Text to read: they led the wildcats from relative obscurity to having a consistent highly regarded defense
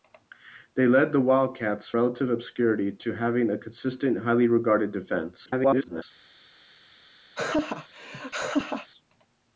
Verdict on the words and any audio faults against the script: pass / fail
fail